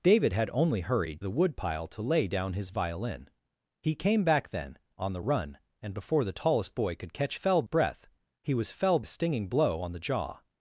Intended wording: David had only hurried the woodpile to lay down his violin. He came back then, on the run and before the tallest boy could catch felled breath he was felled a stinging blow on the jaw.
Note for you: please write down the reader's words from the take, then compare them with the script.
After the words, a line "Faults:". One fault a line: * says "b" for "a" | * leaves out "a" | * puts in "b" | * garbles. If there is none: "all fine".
David had only hurried the woodpile to lay down his violin. He came back then, on the run and before the tallest boy could catch felled breath he was felled a stinging blow on the jaw.
Faults:
all fine